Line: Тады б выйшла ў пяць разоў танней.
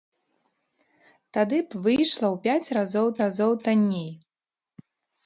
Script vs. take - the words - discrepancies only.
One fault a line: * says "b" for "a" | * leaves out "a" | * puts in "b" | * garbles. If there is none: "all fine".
* puts in "разоў"